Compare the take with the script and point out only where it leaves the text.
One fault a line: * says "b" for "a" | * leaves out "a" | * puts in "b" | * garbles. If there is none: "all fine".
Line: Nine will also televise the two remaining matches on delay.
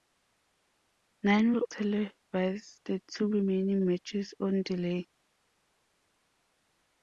* leaves out "also"